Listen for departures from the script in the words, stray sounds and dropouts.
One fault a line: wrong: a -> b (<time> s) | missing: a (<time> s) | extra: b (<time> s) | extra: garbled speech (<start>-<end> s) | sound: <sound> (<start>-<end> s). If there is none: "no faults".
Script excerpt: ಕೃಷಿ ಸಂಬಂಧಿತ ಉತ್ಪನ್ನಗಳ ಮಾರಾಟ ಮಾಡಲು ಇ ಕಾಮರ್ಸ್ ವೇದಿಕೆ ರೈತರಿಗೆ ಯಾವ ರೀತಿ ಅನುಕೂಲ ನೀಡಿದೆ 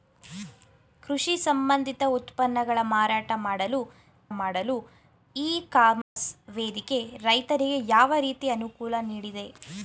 extra: ಮಾಡಲು (4.3 s)
sound: dropout (6.0-6.2 s)